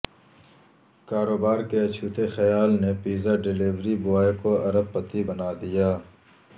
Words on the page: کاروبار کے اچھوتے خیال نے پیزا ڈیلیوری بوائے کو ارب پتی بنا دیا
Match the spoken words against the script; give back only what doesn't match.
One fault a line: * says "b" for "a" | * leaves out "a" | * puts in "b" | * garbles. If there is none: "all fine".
all fine